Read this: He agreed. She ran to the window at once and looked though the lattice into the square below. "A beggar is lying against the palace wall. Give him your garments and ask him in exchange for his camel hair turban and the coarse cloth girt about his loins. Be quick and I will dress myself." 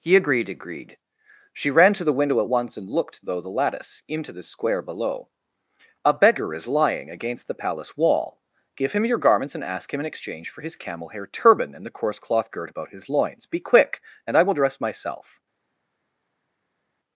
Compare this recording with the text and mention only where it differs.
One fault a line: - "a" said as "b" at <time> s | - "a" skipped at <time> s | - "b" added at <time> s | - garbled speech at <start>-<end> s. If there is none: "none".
- "agreed" added at 0.5 s